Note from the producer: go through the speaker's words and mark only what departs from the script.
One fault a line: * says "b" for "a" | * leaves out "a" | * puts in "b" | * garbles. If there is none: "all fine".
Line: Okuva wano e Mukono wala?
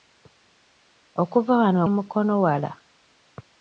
all fine